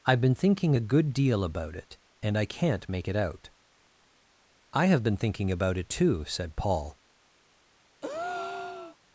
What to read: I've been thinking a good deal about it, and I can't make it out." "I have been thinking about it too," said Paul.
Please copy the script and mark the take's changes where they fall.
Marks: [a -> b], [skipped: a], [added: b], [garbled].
I've been thinking a good deal about it, and I can't make it out." "I have been thinking about it too," said Paul.